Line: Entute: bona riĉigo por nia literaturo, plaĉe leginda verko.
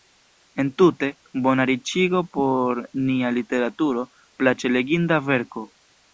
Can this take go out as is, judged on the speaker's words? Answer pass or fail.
pass